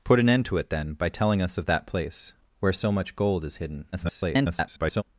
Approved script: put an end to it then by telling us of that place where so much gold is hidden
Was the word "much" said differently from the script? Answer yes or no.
no